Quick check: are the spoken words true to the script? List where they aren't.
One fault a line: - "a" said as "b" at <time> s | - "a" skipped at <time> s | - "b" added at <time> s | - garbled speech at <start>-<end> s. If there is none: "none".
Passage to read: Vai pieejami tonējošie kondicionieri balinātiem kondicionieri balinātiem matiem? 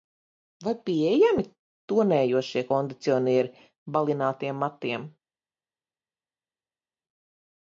- "kondicionieri balinātiem" skipped at 4.6 s